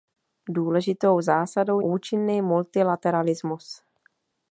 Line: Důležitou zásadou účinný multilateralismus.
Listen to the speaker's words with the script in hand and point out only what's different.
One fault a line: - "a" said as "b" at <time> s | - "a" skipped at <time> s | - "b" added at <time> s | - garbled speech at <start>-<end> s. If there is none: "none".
none